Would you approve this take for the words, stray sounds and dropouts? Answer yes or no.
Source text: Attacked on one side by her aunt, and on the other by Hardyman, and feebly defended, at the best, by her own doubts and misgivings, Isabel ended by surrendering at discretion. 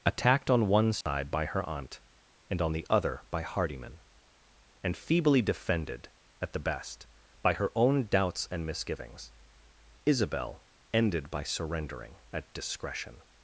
no